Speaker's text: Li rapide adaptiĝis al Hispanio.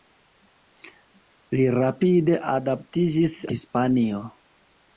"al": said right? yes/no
no